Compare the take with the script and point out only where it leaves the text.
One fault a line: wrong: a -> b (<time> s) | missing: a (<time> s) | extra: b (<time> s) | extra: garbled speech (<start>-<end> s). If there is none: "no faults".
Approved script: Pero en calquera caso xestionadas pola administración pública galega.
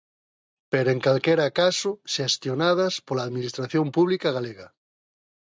no faults